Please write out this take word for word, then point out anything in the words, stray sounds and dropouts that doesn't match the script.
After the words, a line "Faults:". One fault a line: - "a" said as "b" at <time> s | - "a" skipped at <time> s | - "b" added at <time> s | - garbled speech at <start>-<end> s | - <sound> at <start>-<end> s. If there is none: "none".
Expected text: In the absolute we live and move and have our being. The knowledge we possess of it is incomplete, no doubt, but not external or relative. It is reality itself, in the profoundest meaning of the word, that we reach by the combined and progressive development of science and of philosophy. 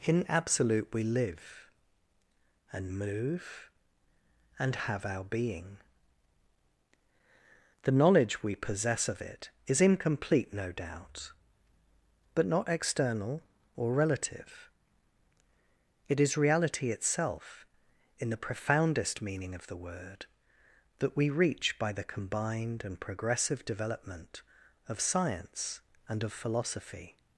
In absolute we live and move and have our being. The knowledge we possess of it is incomplete, no doubt, but not external or relative. It is reality itself, in the profoundest meaning of the word, that we reach by the combined and progressive development of science and of philosophy.
Faults:
- "the" skipped at 0.2 s